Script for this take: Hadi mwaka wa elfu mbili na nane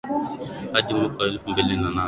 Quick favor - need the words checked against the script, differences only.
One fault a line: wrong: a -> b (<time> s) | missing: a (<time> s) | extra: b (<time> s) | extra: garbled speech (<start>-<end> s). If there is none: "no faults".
no faults